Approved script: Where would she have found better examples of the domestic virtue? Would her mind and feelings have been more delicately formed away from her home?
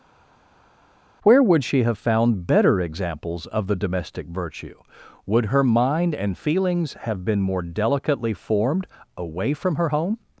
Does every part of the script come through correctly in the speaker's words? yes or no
yes